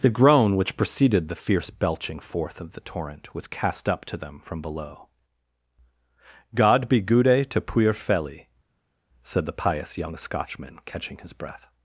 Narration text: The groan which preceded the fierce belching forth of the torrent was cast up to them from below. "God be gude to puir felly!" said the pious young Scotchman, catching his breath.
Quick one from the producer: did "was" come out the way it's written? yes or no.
yes